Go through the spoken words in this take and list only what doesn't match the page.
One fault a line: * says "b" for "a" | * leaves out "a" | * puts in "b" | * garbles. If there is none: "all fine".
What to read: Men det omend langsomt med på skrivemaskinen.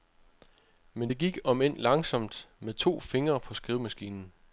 * puts in "gik"
* puts in "to fingre"